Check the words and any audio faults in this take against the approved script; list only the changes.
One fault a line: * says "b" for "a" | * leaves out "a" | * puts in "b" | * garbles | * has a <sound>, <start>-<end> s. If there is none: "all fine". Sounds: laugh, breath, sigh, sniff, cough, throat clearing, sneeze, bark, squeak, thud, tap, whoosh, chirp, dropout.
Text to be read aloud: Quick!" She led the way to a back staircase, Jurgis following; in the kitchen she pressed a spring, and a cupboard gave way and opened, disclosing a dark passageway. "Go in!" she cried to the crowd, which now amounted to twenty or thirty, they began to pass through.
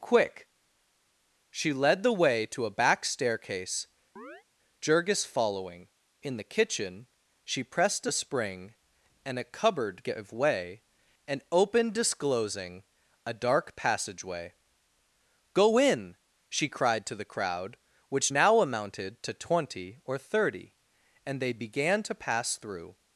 * has a chirp, 4.2-4.4 s
* puts in "and"